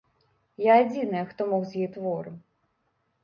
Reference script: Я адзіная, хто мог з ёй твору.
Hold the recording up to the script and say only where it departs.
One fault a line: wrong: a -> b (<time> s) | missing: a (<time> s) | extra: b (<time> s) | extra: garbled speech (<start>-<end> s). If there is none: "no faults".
no faults